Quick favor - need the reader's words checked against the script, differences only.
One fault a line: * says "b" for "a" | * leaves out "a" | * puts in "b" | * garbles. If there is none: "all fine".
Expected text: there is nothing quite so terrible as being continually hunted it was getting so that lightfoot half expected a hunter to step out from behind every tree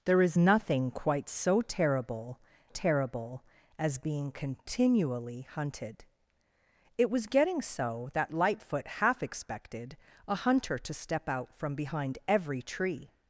* puts in "terrible"